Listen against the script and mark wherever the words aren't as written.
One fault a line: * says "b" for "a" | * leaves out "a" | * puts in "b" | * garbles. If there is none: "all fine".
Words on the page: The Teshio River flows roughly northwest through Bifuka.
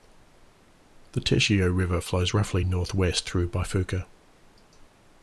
all fine